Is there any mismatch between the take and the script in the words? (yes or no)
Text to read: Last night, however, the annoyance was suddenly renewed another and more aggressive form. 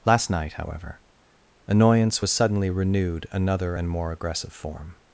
yes